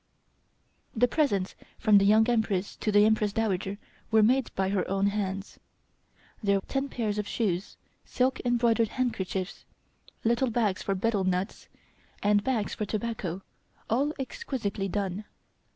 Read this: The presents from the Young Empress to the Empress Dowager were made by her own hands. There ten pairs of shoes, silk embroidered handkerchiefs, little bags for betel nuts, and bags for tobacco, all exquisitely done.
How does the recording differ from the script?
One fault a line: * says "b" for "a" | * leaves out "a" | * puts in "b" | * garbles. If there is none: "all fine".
all fine